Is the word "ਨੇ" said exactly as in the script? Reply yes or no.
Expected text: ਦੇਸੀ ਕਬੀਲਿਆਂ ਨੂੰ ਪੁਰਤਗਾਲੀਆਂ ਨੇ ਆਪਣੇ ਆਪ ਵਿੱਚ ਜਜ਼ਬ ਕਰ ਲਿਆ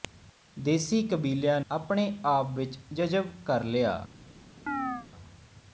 no